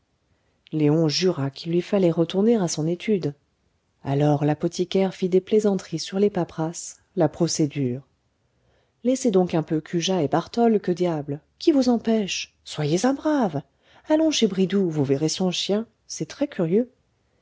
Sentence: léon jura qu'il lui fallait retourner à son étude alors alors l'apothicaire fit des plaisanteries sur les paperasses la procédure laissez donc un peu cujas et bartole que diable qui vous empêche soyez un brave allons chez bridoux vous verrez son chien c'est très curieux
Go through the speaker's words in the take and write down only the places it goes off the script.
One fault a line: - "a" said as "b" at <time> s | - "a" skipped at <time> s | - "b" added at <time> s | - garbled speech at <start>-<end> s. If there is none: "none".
- "alors" skipped at 4.5 s